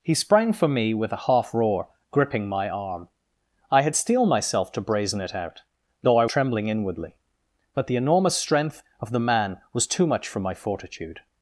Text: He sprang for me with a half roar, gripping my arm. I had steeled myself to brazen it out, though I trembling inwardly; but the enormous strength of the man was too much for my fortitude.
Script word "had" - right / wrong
right